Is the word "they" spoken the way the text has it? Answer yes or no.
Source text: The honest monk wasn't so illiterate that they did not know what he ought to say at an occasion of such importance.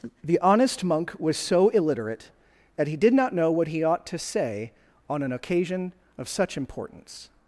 no